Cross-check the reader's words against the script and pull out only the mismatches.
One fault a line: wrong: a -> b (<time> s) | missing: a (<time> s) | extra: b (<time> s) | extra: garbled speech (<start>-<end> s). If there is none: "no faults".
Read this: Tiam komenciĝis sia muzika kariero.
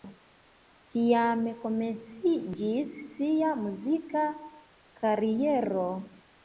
no faults